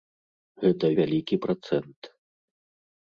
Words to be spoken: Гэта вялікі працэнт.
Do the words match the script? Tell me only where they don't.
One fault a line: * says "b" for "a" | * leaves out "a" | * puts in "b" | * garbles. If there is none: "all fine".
all fine